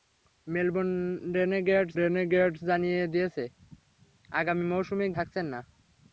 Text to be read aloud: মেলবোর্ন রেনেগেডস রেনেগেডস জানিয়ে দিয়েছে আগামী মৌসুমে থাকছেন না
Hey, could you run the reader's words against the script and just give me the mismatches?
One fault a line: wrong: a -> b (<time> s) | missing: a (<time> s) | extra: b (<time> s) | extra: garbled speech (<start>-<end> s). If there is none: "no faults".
no faults